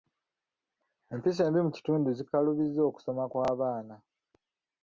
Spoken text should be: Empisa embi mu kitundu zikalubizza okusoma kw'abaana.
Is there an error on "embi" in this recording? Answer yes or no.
no